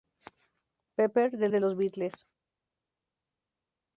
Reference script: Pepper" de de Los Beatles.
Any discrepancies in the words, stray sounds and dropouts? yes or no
no